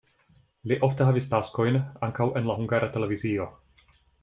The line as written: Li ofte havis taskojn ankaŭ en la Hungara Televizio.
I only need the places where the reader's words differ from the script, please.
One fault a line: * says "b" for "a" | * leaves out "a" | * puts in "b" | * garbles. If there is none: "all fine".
all fine